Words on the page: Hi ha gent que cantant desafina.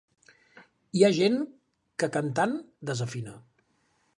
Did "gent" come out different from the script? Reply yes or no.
no